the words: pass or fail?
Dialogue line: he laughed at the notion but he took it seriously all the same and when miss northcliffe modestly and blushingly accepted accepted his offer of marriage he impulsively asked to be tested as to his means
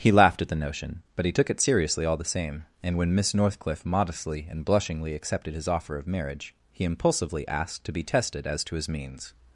fail